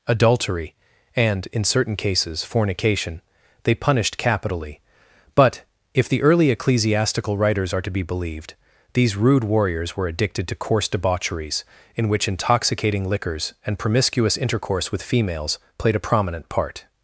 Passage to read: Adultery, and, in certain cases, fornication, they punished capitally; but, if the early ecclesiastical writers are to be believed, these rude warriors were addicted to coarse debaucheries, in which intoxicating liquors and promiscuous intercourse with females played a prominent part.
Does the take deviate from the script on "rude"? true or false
false